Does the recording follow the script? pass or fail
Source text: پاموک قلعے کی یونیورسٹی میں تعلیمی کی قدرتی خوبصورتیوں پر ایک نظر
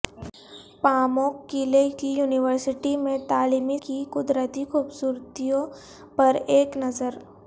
pass